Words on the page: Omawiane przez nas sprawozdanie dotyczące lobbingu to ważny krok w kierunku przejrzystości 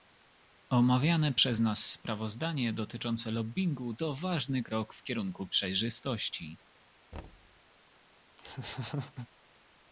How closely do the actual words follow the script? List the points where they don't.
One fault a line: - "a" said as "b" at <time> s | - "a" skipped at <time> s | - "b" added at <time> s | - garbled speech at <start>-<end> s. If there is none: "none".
none